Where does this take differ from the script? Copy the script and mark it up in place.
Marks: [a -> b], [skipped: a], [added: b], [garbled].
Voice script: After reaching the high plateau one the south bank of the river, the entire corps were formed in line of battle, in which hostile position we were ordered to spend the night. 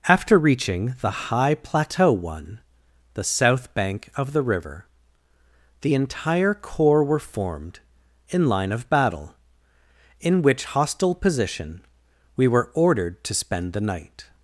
After reaching the high plateau one the south bank of the river, the entire corps were formed in line of battle, in which hostile position we were ordered to spend the night.